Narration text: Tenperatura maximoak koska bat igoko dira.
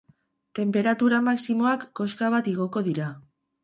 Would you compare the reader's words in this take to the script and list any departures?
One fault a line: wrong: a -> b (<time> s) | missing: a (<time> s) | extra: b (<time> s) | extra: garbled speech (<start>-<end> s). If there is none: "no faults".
no faults